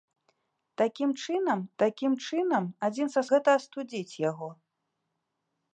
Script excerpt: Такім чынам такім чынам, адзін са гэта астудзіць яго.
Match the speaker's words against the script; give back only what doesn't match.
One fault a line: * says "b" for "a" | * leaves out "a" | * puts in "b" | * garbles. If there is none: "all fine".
all fine